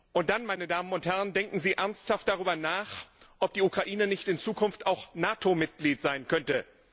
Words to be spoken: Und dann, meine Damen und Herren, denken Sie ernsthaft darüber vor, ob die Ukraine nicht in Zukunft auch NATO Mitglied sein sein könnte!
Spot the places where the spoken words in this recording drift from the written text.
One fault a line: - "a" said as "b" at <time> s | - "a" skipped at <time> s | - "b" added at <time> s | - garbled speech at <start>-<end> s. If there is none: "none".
- "vor" said as "nach" at 2.5 s
- "sein" skipped at 6.3 s